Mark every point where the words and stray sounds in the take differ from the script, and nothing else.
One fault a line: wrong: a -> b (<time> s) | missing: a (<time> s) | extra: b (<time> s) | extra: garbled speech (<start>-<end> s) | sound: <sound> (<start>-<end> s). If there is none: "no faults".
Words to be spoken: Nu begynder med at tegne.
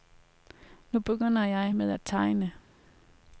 extra: jeg (1.4 s)